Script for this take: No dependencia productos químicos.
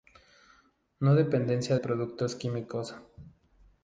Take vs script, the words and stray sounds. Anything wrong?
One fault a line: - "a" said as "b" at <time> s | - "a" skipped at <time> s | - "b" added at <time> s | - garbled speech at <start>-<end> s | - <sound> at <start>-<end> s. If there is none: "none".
none